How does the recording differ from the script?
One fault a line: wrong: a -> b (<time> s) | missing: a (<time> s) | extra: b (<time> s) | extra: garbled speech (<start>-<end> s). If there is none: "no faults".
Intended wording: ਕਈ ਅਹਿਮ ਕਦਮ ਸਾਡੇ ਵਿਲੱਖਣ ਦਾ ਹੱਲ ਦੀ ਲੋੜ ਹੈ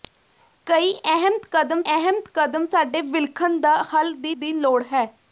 extra: ਅਹਿਮ ਕਦਮ (1.9 s)
extra: ਦੀ (4.3 s)